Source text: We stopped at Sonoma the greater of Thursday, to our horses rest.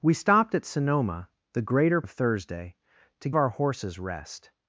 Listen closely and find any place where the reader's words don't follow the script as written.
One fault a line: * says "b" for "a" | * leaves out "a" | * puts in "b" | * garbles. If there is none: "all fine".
all fine